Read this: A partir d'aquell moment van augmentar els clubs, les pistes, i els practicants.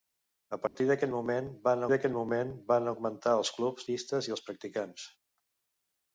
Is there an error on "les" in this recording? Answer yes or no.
yes